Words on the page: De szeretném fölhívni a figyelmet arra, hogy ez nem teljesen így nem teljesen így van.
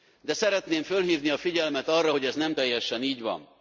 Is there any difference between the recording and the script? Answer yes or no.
yes